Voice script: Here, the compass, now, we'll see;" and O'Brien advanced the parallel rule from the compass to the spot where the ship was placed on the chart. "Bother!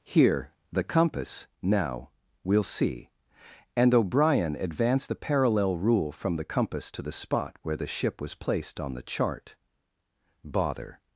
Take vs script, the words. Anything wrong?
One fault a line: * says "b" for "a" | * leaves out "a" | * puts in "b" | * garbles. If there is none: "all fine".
all fine